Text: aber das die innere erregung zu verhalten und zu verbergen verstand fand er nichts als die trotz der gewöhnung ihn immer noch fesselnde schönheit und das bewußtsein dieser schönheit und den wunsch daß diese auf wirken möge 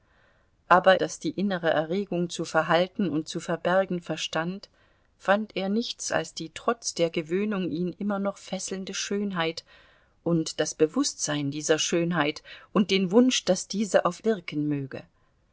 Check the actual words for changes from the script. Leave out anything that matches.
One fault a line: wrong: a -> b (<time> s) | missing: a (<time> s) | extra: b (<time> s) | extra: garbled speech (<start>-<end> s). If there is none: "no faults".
no faults